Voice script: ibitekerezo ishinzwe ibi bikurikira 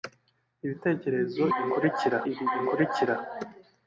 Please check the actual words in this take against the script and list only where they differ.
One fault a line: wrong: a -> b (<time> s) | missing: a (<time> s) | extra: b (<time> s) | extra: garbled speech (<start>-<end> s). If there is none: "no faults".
wrong: ishinzwe -> bikurikira (1.6 s)